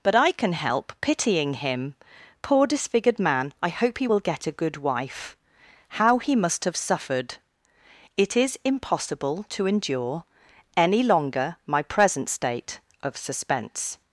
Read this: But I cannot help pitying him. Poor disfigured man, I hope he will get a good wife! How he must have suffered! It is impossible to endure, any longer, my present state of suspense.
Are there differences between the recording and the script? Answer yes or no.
yes